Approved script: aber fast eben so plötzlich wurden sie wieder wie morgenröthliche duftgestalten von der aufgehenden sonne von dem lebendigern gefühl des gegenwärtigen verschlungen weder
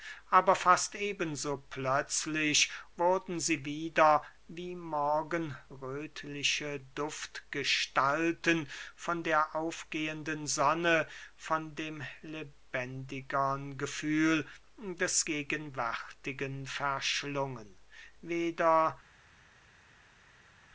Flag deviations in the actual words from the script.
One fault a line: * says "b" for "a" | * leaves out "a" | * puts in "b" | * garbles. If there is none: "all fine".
all fine